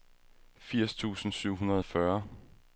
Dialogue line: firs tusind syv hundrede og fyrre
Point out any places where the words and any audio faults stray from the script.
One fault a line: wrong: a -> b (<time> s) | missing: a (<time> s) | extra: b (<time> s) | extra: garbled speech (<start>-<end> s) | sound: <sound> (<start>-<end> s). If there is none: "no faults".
no faults